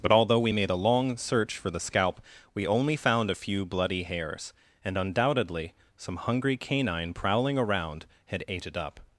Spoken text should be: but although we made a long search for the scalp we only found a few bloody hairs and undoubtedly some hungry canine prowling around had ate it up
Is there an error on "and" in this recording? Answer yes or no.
no